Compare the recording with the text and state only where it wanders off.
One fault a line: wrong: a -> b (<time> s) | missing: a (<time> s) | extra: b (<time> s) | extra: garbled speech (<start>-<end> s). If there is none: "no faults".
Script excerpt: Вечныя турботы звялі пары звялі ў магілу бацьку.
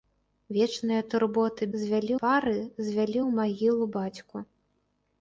no faults